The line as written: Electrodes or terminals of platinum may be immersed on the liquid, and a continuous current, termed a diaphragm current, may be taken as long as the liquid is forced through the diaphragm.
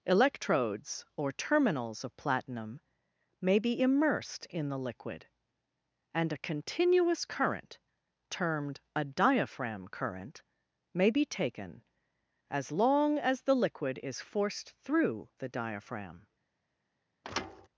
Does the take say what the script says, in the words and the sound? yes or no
no